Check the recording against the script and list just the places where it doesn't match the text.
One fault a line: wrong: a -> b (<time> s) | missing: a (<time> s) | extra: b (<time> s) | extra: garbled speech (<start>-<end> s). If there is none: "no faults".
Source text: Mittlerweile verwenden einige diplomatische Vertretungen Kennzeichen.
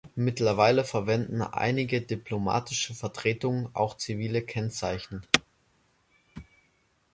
extra: auch zivile (3.7 s)